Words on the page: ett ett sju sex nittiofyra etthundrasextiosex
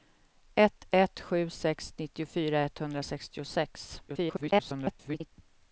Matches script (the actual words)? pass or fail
fail